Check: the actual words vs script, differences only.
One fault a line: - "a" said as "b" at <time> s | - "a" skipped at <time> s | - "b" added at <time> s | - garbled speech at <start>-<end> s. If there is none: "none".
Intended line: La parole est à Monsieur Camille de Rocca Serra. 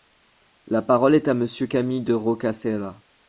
none